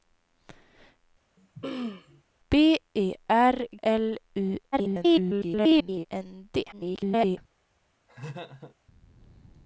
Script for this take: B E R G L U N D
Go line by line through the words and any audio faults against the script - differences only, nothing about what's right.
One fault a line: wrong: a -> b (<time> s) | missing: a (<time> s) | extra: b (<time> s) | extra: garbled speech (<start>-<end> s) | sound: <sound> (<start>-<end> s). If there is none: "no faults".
sound: throat clearing (1.4-2.2 s)
missing: G (3.7 s)
extra: garbled speech (4.7-6.1 s)
extra: garbled speech (6.7-7.4 s)
sound: laugh (8.1-8.8 s)